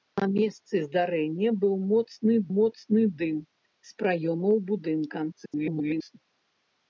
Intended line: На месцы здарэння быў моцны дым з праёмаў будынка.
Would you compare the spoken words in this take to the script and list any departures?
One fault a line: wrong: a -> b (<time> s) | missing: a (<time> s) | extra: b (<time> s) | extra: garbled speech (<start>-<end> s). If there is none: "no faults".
extra: моцны (2.6 s)
extra: garbled speech (5.3-6.2 s)